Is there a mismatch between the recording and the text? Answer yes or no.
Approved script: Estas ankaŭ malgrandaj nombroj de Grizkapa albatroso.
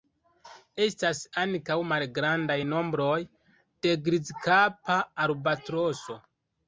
no